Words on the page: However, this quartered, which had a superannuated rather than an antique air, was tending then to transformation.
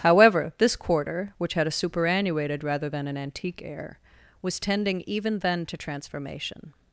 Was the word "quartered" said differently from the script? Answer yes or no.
yes